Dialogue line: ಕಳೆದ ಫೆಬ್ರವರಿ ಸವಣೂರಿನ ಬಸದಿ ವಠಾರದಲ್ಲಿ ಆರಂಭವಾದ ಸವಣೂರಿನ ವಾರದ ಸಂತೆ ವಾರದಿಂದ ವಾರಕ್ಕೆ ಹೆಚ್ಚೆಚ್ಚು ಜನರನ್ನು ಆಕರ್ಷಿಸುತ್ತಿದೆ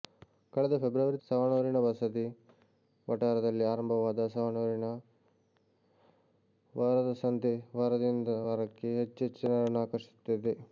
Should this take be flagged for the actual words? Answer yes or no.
no